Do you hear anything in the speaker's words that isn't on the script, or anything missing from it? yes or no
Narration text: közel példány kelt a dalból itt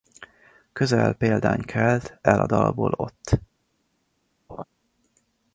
yes